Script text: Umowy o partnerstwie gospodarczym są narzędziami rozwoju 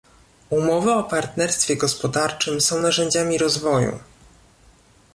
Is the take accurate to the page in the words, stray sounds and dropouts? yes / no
yes